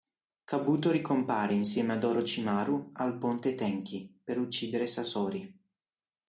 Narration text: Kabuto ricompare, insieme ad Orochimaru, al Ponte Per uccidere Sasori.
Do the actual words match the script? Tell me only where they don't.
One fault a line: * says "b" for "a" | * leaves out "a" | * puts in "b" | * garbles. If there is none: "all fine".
* puts in "Tenchi"